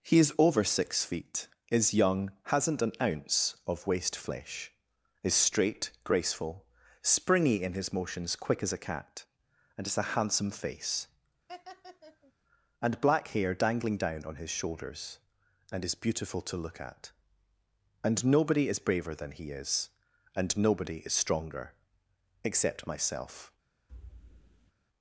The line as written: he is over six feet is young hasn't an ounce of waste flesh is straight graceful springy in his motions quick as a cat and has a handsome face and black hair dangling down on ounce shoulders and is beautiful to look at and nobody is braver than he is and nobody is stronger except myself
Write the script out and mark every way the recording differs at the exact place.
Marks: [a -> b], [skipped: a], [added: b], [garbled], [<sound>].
he is over six feet is young hasn't an ounce of waste flesh is straight graceful springy in his motions quick as a cat and has a handsome face [laugh] and black hair dangling down on [ounce -> his] shoulders and is beautiful to look at and nobody is braver than he is and nobody is stronger except myself [thud]